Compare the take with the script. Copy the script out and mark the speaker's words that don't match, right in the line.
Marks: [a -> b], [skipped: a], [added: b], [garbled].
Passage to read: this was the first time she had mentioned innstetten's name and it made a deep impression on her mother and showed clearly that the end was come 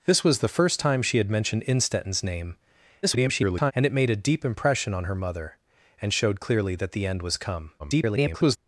this was the first time she had mentioned innstetten's name [garbled] and it made a deep impression on her mother and showed clearly that the end was come [garbled]